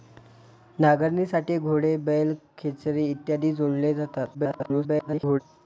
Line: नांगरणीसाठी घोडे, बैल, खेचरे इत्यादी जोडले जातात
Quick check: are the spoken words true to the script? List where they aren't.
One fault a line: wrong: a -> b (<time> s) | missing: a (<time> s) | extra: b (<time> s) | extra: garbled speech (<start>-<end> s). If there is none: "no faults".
extra: garbled speech (4.3-5.4 s)